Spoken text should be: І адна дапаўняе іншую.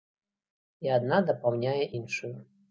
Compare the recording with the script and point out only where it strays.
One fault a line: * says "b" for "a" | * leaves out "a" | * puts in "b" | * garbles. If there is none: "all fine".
all fine